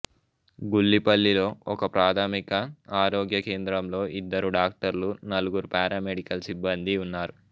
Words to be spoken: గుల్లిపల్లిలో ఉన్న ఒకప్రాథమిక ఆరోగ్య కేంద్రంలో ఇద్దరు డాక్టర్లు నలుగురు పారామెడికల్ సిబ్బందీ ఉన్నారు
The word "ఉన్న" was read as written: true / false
false